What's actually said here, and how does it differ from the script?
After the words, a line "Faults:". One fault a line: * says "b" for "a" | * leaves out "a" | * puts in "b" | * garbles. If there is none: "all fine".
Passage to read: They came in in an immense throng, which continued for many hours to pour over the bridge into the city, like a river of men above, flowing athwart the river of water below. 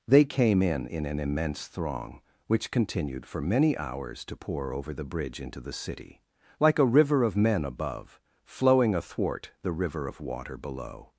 They came in in an immense throng, which continued for many hours to pour over the bridge into the city, like a river of men above, flowing athwart the river of water below.
Faults:
all fine